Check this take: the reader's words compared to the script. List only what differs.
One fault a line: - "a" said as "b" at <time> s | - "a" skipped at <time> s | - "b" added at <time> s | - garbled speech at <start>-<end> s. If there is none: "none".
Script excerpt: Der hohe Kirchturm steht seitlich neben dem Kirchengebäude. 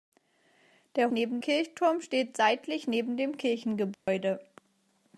- "hohe" said as "neben" at 1.1 s